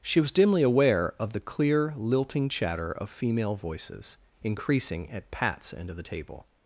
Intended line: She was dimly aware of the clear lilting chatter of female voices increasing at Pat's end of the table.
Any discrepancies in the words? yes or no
no